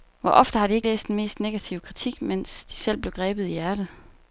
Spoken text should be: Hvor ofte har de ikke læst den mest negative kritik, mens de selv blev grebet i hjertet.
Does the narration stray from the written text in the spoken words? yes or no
no